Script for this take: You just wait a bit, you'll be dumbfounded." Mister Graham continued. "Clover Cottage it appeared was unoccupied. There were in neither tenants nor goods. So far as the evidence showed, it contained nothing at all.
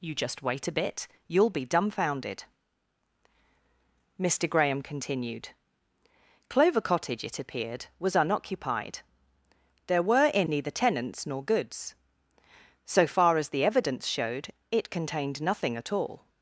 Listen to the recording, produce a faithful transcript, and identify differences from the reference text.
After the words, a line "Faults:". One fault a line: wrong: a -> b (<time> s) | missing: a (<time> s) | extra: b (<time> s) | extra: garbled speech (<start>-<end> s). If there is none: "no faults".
You just wait a bit, you'll be dumbfounded." Mister Graham continued. "Clover Cottage it appeared was unoccupied. There were in neither tenants nor goods. So far as the evidence showed, it contained nothing at all.
Faults:
no faults